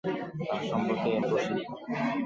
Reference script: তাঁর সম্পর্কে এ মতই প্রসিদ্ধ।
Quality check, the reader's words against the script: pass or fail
fail